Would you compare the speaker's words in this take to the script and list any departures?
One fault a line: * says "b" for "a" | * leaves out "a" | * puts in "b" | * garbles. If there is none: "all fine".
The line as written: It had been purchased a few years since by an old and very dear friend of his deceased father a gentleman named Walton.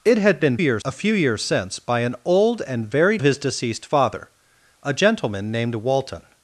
* says "years" for "purchased"
* leaves out "dear friend of"